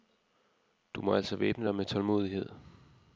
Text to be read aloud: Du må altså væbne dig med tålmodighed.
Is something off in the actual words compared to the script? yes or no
no